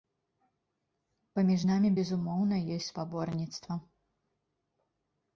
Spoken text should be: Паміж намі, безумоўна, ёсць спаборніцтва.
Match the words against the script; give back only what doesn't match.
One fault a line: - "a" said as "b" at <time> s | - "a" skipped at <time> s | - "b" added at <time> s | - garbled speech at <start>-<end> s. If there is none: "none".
none